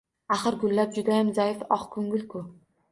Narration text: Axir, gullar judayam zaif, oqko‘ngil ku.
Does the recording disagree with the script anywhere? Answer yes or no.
no